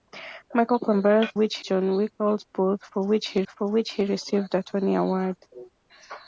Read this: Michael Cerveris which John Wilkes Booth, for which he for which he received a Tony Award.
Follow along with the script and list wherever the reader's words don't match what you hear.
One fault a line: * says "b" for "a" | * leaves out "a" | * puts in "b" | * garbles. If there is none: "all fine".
all fine